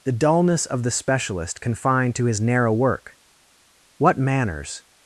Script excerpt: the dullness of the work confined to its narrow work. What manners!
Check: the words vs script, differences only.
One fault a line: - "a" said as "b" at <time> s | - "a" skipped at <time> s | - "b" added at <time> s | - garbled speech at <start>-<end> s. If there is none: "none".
- "work" said as "specialist" at 0.9 s
- "its" said as "his" at 2.2 s